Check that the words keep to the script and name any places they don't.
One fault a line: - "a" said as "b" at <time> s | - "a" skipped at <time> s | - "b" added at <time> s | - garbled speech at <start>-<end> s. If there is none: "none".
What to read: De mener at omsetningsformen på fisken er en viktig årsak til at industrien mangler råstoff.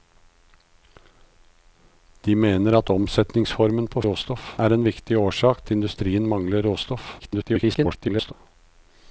- "fisken" said as "råstoff" at 4.1 s
- "til" skipped at 5.7 s
- garbled speech at 7.2-8.3 s